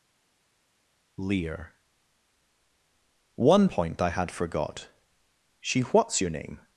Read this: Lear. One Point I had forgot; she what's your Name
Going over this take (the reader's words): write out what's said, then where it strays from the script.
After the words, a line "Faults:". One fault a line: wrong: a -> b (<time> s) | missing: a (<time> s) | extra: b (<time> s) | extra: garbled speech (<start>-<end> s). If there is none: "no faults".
Lear. One Point I had forgot; she what's your Name
Faults:
no faults